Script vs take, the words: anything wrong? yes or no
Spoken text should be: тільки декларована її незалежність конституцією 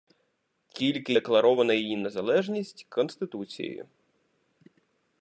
no